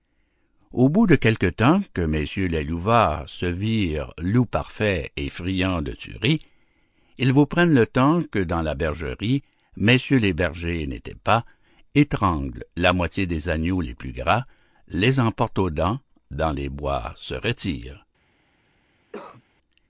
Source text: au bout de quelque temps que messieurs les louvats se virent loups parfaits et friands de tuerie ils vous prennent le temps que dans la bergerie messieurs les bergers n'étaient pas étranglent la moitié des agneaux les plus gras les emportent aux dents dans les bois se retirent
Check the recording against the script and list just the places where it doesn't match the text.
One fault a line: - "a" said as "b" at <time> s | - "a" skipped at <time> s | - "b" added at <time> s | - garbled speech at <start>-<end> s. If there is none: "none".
none